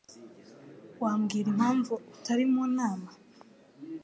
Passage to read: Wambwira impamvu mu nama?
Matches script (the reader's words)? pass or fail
fail